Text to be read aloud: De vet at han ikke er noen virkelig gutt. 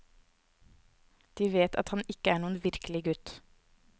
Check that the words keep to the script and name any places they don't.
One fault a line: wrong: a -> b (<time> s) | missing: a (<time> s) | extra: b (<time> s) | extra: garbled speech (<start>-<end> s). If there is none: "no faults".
no faults